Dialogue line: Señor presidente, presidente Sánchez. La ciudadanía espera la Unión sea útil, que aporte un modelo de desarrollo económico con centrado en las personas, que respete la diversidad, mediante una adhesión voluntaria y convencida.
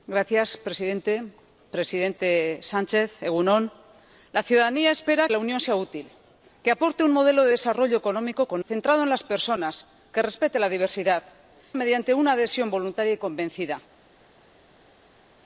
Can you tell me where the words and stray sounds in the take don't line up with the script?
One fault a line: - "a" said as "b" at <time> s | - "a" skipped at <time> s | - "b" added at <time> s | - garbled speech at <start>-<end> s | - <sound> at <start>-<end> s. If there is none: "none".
none